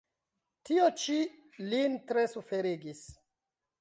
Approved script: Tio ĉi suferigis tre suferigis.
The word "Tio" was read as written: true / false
true